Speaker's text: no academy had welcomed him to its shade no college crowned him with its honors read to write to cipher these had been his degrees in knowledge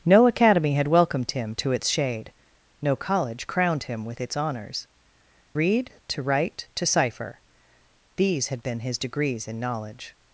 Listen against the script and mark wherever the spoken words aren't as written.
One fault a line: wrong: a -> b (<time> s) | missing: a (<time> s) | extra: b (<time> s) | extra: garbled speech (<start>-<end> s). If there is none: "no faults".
no faults